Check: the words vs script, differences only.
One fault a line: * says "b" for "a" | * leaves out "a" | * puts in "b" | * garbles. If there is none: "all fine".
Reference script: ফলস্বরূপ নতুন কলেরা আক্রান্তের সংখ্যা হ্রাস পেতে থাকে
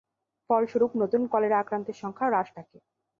* leaves out "পেতে"